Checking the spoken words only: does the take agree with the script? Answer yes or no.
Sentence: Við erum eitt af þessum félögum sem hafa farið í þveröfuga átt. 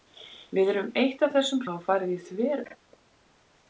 no